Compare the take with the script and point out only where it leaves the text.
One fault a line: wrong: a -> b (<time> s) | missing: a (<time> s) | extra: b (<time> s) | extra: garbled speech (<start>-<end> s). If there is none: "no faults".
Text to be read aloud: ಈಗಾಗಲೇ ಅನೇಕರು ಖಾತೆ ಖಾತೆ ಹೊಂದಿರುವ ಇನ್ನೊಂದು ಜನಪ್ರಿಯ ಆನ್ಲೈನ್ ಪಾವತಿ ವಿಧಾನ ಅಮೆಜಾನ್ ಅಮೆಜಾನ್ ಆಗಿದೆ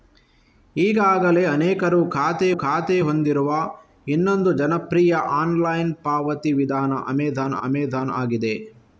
no faults